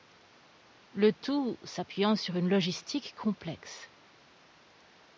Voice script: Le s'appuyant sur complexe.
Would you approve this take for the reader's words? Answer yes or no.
no